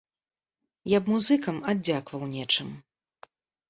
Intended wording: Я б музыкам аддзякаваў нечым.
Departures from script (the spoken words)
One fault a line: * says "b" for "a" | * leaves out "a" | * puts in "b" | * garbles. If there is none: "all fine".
all fine